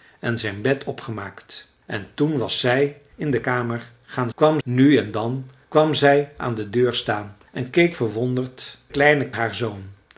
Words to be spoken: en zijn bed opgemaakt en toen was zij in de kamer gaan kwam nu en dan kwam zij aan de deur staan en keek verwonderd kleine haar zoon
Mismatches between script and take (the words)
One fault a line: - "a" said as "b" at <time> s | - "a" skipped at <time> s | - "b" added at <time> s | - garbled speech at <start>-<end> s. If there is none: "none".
none